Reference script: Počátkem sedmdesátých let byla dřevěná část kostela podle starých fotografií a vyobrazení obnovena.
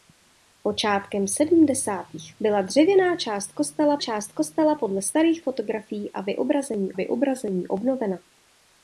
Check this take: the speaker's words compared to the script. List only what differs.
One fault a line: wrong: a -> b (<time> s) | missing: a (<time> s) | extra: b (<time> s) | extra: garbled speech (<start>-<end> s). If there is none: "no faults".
missing: let (2.4 s)
extra: část kostela (4.0 s)
extra: vyobrazení (6.9 s)